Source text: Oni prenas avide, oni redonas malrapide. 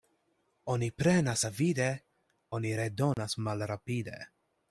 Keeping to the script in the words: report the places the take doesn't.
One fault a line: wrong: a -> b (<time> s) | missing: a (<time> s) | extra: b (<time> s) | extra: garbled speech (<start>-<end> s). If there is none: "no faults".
no faults